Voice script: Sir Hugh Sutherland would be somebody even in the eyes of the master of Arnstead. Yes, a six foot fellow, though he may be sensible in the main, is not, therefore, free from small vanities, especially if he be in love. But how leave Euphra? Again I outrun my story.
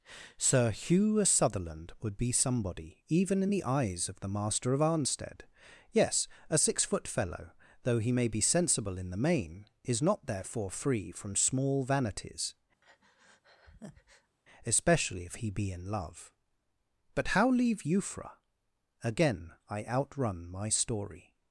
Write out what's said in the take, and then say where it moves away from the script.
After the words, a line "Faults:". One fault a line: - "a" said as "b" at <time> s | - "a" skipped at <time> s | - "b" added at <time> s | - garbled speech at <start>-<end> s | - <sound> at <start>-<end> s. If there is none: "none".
Sir Hugh Sutherland would be somebody even in the eyes of the master of Arnstead. Yes, a six foot fellow, though he may be sensible in the main, is not, therefore, free from small vanities, especially if he be in love. But how leave Euphra? Again I outrun my story.
Faults:
- breath at 12.8-14.4 s